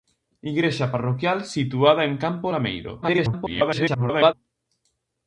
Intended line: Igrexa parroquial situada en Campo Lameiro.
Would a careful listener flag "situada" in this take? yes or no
no